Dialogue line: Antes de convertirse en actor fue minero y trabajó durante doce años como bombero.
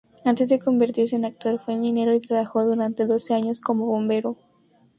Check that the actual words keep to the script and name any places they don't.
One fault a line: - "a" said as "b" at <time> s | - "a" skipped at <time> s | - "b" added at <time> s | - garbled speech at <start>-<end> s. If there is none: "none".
none